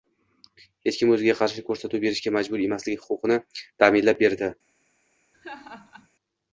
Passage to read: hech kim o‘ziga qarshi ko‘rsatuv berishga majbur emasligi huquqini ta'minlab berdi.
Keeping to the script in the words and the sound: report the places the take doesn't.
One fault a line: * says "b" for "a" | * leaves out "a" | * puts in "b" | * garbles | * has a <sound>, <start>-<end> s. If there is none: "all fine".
* has a laugh, 5.3-6.1 s